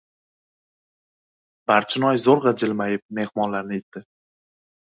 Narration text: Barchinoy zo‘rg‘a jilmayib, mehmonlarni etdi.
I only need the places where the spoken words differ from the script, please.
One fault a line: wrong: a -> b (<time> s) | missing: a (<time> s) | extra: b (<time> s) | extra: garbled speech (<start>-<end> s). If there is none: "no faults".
no faults